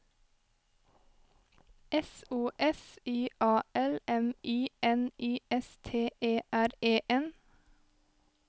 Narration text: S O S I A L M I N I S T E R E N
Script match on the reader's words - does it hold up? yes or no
yes